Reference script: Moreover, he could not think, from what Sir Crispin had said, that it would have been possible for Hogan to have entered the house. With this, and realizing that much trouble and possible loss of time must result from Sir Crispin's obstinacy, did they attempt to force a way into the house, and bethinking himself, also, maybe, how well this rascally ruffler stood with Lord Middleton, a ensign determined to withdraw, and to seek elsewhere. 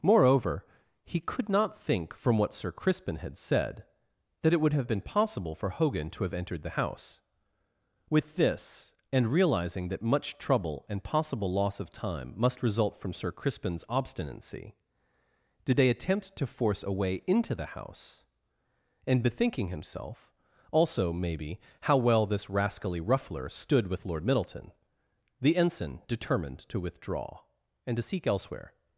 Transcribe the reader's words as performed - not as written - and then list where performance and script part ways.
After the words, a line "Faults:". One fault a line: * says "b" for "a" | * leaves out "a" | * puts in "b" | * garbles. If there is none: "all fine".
Moreover, he could not think, from what Sir Crispin had said, that it would have been possible for Hogan to have entered the house. With this, and realizing that much trouble and possible loss of time must result from Sir Crispin's obstinacy, did they attempt to force a way into the house, and bethinking himself, also, maybe, how well this rascally ruffler stood with Lord Middleton, the ensign determined to withdraw, and to seek elsewhere.
Faults:
* says "the" for "a"